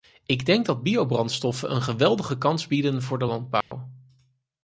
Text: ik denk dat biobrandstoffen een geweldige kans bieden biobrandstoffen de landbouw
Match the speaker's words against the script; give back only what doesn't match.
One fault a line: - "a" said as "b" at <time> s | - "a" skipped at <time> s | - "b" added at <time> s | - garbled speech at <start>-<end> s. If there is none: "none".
- "biobrandstoffen" said as "voor" at 3.0 s